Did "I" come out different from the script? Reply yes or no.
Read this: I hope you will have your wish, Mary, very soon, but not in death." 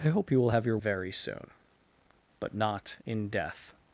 no